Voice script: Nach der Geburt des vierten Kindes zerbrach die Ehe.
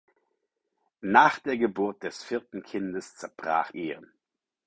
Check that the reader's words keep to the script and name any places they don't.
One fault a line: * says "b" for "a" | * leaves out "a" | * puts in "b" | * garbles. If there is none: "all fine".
* leaves out "die"